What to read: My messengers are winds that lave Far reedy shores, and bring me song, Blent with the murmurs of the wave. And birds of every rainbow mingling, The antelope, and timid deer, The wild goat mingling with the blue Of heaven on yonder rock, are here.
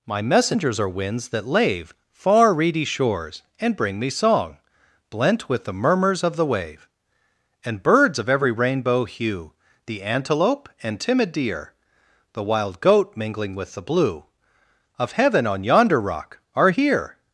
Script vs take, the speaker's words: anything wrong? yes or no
yes